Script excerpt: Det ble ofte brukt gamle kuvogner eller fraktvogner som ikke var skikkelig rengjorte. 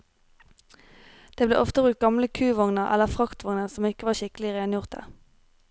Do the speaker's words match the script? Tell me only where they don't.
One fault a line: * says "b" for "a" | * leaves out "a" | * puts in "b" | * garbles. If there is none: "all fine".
all fine